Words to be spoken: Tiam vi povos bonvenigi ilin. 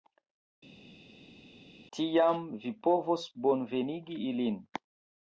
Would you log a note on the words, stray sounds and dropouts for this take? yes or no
no